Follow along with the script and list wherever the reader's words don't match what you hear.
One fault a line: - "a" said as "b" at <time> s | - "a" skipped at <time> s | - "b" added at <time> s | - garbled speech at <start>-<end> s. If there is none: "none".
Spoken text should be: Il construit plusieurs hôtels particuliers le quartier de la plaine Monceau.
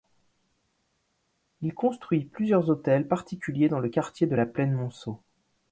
- "dans" added at 3.7 s